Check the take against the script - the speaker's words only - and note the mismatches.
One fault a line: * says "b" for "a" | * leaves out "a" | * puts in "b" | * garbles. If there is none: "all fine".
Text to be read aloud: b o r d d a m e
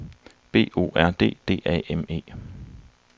all fine